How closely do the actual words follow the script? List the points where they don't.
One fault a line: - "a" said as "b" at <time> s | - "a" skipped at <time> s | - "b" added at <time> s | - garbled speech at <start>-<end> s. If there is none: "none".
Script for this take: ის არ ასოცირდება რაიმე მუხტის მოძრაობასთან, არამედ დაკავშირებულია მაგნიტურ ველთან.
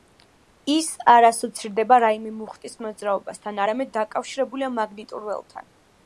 none